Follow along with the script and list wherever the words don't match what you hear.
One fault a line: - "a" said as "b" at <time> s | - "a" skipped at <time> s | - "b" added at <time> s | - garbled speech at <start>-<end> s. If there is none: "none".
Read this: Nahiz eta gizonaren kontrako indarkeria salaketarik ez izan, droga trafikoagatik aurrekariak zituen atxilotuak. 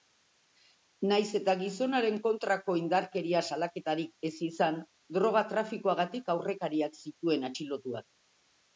none